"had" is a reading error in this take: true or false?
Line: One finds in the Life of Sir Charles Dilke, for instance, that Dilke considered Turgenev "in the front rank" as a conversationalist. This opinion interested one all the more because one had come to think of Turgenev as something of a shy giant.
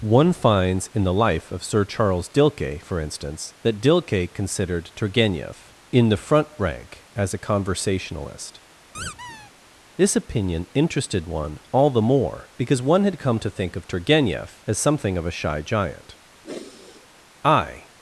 false